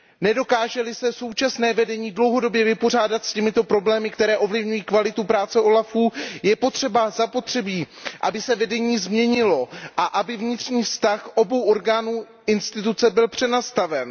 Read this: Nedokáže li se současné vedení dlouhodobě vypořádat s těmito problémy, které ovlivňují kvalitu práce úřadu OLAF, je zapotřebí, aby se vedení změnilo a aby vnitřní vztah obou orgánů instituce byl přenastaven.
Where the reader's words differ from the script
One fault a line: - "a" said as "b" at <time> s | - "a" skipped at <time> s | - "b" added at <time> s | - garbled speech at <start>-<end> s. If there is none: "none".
none